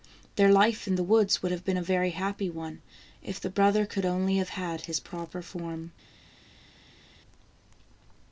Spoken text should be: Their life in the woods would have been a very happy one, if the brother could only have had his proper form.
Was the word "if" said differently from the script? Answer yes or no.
no